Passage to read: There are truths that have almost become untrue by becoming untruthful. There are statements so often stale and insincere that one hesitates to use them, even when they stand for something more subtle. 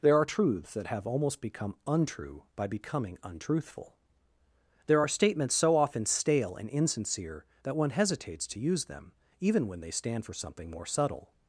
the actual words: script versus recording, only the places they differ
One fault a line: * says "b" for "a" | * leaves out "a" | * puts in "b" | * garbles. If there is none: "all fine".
all fine